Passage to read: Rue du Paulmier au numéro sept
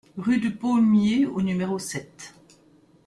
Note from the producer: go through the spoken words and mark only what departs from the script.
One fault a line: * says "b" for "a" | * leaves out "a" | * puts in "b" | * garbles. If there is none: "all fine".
all fine